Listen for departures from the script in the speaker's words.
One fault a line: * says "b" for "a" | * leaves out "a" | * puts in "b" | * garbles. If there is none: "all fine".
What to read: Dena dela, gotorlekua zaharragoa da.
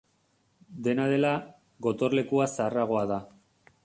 all fine